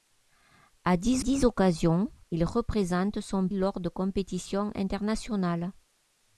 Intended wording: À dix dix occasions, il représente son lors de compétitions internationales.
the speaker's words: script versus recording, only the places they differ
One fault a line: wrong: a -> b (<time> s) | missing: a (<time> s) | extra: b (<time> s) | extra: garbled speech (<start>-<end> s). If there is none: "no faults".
no faults